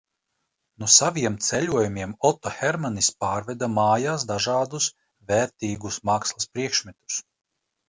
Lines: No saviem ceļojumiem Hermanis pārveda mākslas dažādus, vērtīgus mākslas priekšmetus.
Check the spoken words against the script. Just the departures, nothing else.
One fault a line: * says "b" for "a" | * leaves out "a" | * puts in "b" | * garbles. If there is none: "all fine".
* puts in "Oto"
* says "mājās" for "mākslas"